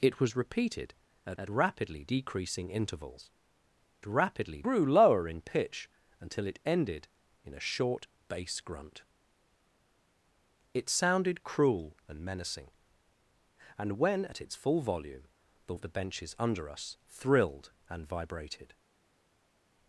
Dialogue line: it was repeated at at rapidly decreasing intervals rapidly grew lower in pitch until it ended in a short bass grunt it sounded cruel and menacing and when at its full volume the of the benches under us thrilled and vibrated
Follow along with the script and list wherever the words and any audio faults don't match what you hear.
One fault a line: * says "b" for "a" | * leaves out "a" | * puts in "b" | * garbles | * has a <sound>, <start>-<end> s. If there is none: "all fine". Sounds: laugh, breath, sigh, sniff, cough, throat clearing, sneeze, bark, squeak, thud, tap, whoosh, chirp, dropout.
all fine